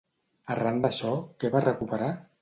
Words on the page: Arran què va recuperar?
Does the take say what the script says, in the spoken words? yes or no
no